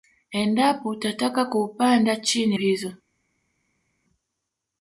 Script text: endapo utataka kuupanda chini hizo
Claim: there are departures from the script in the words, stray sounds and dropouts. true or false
false